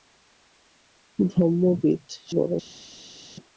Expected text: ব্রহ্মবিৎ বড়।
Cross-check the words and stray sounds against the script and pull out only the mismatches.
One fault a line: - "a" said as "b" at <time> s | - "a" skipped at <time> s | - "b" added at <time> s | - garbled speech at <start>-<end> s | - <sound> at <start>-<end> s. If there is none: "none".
none